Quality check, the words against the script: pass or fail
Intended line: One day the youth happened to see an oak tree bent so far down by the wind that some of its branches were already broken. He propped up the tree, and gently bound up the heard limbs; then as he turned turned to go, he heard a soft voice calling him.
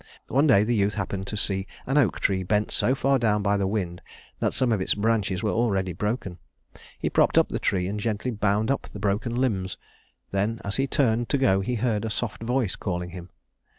fail